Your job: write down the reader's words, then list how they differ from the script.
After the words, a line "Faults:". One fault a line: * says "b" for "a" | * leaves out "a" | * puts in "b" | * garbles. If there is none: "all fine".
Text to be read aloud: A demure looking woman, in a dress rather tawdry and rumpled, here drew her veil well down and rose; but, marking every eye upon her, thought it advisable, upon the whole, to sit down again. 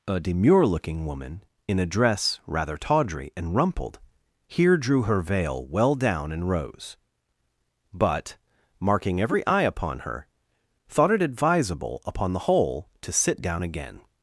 A demure looking woman, in a dress rather tawdry and rumpled, here drew her veil well down and rose; but, marking every eye upon her, thought it advisable, upon the whole, to sit down again.
Faults:
all fine